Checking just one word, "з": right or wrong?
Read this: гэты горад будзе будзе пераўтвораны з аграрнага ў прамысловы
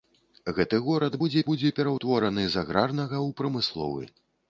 right